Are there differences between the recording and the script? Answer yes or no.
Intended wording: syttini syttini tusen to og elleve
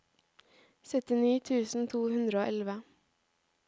yes